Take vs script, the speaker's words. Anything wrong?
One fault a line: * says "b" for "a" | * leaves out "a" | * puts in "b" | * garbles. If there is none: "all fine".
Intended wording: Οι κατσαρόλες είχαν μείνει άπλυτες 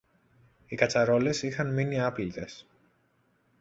all fine